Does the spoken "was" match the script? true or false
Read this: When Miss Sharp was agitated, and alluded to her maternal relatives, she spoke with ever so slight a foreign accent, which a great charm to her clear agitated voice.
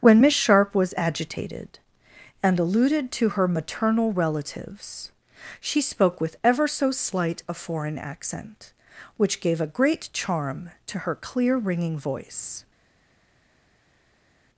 true